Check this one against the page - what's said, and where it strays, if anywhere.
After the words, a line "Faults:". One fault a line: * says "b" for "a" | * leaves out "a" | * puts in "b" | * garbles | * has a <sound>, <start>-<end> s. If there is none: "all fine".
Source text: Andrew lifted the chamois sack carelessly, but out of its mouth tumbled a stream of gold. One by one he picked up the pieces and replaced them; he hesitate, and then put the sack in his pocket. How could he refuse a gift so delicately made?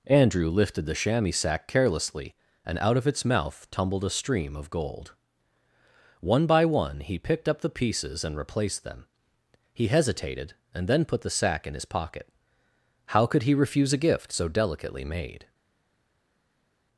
Andrew lifted the chamois sack carelessly, and out of its mouth tumbled a stream of gold. One by one he picked up the pieces and replaced them; he hesitated, and then put the sack in his pocket. How could he refuse a gift so delicately made?
Faults:
* says "and" for "but"
* says "hesitated" for "hesitate"